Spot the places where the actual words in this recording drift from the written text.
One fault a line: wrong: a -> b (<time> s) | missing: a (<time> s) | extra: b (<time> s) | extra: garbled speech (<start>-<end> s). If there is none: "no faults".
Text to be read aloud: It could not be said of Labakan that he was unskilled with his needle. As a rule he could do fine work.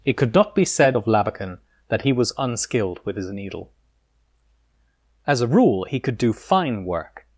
no faults